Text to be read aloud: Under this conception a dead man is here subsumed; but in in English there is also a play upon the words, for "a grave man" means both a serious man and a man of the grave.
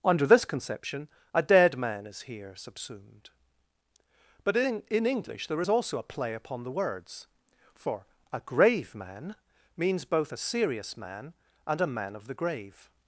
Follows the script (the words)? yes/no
yes